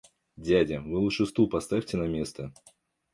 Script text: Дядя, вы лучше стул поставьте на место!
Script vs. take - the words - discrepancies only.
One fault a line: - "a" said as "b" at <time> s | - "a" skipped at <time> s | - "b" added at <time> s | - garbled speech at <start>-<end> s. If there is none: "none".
none